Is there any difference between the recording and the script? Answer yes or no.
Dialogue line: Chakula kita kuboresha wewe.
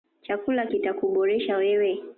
no